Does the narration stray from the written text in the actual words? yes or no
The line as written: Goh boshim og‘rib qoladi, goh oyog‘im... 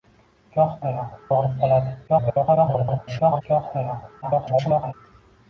yes